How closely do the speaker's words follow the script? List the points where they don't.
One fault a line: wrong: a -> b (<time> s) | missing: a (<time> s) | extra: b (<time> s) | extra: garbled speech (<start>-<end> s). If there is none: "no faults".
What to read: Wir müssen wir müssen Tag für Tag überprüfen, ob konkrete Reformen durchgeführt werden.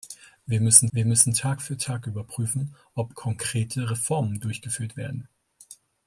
no faults